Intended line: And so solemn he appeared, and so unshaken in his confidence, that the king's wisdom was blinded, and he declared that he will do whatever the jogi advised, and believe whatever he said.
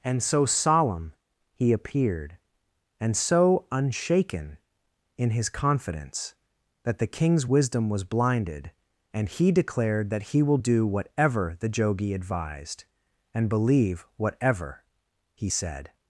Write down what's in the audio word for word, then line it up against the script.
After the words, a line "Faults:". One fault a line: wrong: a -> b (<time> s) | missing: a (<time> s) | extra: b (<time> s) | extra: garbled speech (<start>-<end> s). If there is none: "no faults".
And so solemn he appeared, and so unshaken in his confidence, that the king's wisdom was blinded, and he declared that he will do whatever the jogi advised, and believe whatever he said.
Faults:
no faults